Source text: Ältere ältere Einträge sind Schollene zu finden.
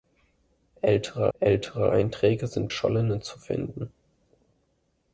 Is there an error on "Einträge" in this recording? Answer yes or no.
no